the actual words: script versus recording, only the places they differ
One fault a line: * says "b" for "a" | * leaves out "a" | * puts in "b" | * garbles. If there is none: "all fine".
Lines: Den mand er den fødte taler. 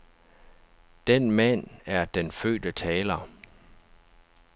all fine